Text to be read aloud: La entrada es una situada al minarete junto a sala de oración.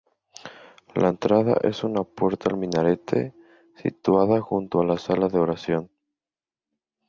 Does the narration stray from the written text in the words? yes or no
yes